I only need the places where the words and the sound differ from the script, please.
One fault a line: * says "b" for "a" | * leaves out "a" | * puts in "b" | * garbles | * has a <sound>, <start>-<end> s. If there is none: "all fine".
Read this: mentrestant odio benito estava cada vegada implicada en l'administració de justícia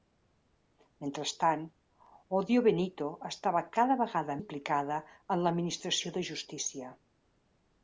all fine